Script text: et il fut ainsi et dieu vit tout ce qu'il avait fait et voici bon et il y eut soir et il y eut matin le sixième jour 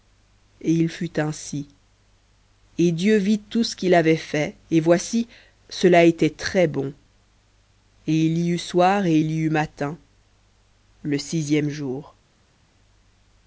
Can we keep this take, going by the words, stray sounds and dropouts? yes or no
no